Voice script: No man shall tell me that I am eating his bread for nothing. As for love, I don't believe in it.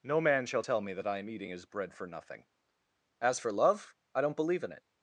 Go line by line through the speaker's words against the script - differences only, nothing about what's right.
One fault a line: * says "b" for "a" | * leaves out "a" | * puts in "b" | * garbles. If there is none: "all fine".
all fine